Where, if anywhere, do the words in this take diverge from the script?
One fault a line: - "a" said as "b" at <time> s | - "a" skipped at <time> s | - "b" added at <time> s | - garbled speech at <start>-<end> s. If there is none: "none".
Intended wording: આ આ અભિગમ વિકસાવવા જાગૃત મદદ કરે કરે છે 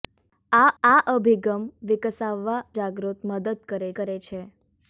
none